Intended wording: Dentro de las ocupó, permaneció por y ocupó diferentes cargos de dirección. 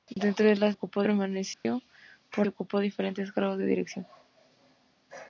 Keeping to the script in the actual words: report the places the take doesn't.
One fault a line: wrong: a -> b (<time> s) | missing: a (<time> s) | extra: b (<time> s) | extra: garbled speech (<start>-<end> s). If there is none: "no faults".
no faults